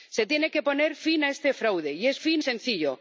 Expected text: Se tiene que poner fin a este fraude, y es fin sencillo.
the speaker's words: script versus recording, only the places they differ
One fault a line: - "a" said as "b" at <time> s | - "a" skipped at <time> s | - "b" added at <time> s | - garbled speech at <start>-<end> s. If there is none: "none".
none